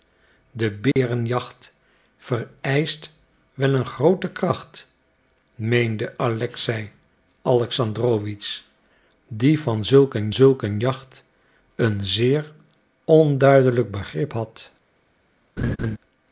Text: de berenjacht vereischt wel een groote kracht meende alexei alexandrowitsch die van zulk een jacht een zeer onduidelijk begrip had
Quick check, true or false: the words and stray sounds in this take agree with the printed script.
false